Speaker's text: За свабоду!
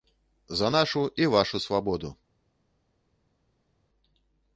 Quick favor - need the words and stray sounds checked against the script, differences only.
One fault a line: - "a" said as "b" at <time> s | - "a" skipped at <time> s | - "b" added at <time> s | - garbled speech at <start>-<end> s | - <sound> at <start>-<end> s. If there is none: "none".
- "нашу і вашу" added at 0.7 s